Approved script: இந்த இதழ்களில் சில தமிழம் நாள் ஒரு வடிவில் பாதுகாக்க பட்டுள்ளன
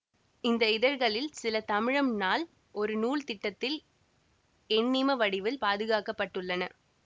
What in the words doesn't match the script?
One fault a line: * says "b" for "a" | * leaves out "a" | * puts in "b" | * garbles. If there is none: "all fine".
* puts in "நூல் திட்டத்தில் எண்ணிம"